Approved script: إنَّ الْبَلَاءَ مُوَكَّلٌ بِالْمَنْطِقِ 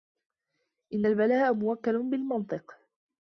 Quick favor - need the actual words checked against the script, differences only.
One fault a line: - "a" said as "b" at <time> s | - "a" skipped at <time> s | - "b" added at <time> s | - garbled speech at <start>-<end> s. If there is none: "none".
none